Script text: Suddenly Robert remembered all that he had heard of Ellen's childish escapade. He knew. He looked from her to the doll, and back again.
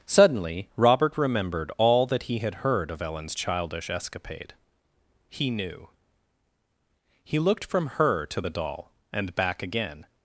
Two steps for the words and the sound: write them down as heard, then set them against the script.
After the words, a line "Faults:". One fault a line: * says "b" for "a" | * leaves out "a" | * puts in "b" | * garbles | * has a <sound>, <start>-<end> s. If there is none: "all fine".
Suddenly Robert remembered all that he had heard of Ellen's childish escapade. He knew. He looked from her to the doll, and back again.
Faults:
all fine